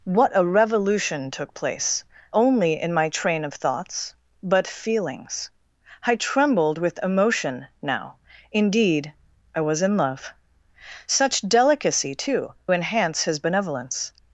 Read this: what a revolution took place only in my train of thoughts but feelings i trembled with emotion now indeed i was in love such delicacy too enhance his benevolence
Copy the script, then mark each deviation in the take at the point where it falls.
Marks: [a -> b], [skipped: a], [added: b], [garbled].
what a revolution took place only in my train of thoughts but feelings i trembled with emotion now indeed i was in love such delicacy too enhance his benevolence